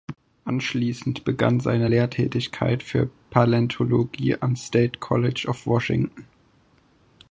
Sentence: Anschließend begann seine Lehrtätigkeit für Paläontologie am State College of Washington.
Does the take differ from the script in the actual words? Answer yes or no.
no